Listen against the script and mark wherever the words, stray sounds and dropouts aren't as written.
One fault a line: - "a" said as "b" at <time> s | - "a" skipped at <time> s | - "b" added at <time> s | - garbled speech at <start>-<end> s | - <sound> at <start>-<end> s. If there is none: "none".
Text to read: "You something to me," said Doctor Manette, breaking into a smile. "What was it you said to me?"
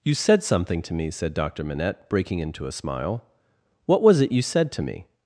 - "said" added at 0.1 s